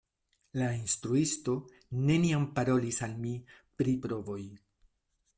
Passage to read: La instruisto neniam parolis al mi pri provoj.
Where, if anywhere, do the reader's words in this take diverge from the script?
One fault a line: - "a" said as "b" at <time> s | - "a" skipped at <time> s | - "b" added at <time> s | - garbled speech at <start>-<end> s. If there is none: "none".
none